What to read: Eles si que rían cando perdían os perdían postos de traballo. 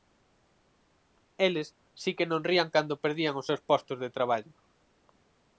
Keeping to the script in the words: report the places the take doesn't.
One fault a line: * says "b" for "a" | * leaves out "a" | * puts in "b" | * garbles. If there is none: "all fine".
* puts in "non"
* says "seus" for "perdían"